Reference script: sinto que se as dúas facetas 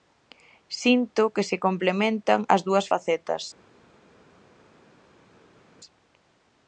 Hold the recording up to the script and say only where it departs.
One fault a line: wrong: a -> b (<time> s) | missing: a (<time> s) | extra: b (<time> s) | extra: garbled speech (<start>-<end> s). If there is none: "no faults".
extra: complementan (1.6 s)